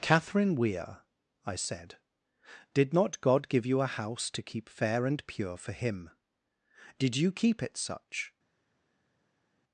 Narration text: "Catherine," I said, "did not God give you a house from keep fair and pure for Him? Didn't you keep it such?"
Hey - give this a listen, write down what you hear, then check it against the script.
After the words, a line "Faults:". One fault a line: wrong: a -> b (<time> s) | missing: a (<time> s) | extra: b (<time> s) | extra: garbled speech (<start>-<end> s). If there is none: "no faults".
"Catherine Weir," I said, "did not God give you a house to keep fair and pure for Him? Did you keep it such?"
Faults:
extra: Weir (0.6 s)
wrong: from -> to (4.3 s)
wrong: Didn't -> Did (7.0 s)